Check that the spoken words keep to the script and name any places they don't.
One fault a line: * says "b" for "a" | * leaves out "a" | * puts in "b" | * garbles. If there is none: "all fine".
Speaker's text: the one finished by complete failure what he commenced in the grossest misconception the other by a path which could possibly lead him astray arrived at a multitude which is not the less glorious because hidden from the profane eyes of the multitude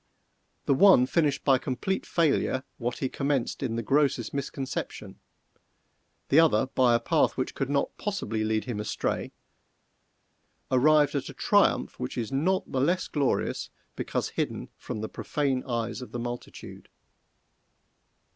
* puts in "not"
* says "triumph" for "multitude"